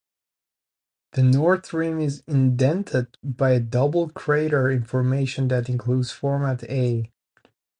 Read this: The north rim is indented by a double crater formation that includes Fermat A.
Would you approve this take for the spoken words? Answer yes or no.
yes